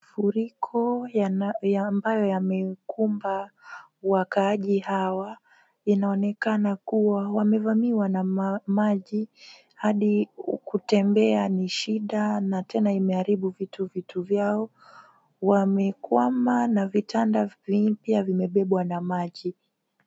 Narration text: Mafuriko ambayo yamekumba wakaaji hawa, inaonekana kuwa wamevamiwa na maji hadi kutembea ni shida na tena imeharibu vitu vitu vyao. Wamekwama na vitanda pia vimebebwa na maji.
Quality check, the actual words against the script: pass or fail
pass